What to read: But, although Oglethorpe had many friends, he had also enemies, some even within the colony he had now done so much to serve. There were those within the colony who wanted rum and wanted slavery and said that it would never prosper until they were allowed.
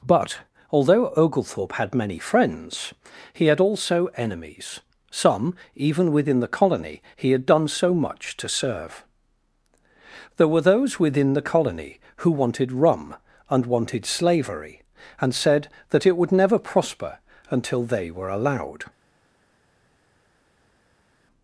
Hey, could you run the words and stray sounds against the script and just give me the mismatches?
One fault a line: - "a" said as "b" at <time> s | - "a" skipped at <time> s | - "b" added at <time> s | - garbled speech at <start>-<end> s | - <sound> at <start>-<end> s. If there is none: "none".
- "now" skipped at 7.4 s